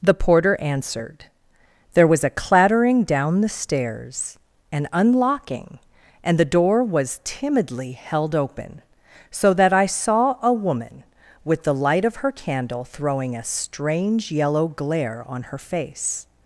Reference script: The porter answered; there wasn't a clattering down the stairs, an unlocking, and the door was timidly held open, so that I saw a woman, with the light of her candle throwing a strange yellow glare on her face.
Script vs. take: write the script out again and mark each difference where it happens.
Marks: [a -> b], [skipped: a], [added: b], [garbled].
The porter answered; there [wasn't -> was] a clattering down the stairs, an unlocking, and the door was timidly held open, so that I saw a woman, with the light of her candle throwing a strange yellow glare on her face.